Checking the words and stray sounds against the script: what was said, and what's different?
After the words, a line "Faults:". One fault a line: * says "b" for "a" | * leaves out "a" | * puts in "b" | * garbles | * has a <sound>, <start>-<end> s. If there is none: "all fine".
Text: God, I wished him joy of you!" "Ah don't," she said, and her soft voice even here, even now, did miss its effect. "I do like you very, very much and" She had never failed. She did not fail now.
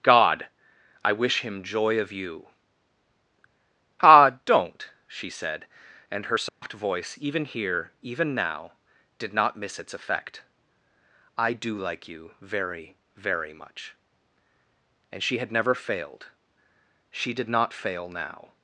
God, I wish him joy of you!" "Ah don't," she said, and her soft voice even here, even now, did not miss its effect. "I do like you very, very much and" She had never failed. She did not fail now.
Faults:
* says "wish" for "wished"
* has a dropout, 6.5-6.6 s
* puts in "not"